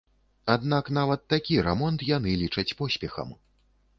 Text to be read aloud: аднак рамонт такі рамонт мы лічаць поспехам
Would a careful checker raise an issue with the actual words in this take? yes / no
yes